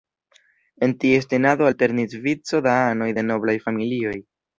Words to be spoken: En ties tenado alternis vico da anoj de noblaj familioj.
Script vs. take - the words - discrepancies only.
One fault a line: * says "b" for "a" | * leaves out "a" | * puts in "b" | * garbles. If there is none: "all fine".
all fine